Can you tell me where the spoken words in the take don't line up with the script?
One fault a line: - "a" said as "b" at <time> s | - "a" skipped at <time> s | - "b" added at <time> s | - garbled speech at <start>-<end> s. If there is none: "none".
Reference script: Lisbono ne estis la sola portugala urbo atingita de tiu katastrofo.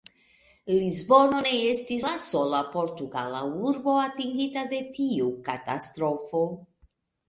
none